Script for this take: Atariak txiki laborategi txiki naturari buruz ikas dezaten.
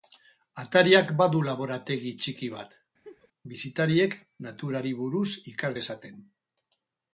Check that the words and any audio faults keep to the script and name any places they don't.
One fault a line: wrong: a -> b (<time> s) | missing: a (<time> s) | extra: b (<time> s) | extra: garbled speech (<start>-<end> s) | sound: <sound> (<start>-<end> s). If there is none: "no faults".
wrong: txiki -> badu (1.2 s)
extra: bat bisitariek (2.5 s)
sound: laugh (3.0-3.3 s)